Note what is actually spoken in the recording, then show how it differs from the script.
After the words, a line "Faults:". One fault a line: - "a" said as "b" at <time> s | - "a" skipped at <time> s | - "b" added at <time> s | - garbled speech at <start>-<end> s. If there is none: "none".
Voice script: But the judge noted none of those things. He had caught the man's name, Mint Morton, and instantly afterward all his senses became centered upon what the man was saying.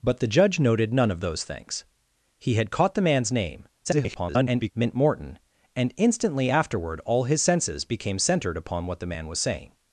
But the judge noted none of those things. He had caught the man's name, [garbled] Mint Morton, and instantly afterward all his senses became centered upon what the man was saying.
Faults:
- garbled speech at 3.8-4.7 s